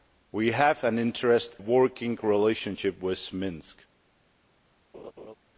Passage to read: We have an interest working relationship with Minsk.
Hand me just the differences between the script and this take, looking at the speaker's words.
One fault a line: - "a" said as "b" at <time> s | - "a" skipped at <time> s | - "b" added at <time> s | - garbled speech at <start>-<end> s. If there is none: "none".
none